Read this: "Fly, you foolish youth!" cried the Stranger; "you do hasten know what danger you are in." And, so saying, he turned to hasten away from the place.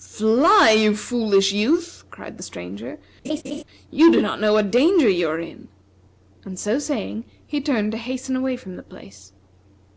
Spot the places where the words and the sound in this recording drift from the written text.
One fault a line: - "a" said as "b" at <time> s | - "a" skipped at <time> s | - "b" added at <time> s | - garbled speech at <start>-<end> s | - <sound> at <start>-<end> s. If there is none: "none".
- laugh at 3.2-3.6 s
- "hasten" said as "not" at 4.2 s